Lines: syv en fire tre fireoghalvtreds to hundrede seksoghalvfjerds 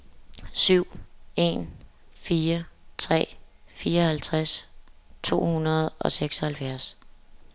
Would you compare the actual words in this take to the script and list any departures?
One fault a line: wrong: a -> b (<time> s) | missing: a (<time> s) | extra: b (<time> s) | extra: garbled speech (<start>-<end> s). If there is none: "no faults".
extra: og (6.0 s)